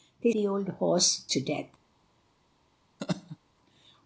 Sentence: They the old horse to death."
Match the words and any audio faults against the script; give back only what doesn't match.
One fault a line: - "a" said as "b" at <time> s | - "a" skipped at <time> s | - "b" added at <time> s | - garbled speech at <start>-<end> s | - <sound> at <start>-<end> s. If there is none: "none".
- laugh at 3.0-3.4 s